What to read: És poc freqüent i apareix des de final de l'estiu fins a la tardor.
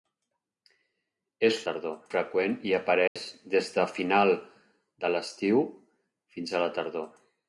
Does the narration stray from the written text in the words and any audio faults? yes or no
yes